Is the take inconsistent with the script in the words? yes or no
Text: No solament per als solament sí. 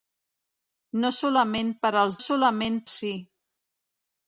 no